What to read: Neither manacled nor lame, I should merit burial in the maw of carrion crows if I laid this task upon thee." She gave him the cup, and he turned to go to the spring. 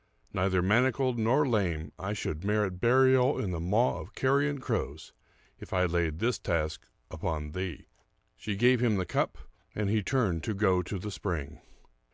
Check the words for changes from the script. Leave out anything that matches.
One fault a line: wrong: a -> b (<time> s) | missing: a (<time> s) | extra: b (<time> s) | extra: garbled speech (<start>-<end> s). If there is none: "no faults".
no faults